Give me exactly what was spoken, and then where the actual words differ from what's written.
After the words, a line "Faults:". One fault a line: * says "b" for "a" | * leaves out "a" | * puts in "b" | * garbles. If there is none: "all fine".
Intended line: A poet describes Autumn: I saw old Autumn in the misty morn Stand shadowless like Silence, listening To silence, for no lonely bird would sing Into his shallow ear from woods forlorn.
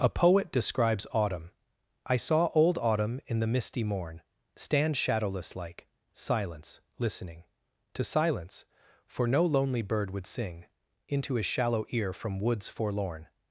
A poet describes Autumn: I saw old Autumn in the misty morn Stand shadowless like Silence, listening To silence, for no lonely bird would sing Into his shallow ear from woods forlorn.
Faults:
all fine